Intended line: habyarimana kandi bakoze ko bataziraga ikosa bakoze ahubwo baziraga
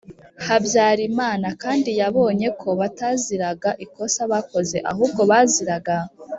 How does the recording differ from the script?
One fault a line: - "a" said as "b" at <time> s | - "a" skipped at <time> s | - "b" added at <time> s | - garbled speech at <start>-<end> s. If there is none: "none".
- "bakoze" said as "yabonye" at 2.0 s